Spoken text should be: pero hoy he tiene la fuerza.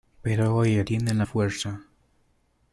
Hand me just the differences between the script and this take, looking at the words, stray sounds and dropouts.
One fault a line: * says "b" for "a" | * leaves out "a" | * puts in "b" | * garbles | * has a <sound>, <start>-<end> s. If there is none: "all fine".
all fine